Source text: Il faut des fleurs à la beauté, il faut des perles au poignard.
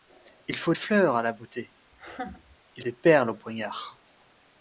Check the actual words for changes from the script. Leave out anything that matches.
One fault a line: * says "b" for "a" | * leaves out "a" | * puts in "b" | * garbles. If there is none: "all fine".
* leaves out "des"
* leaves out "faut"